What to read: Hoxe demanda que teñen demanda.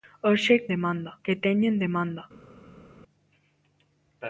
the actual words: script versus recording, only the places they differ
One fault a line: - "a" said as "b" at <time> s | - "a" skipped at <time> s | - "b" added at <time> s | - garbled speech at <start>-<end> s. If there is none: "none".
none